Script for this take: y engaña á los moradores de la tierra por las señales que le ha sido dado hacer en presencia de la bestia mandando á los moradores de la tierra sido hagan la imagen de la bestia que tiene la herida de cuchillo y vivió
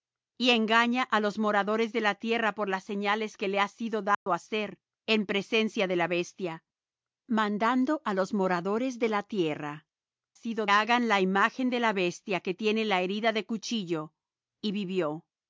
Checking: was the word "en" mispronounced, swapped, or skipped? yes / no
no